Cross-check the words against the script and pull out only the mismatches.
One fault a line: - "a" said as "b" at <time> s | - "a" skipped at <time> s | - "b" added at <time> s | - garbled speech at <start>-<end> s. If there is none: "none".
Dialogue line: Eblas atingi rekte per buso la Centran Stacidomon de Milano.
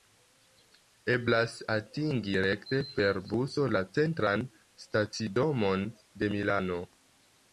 none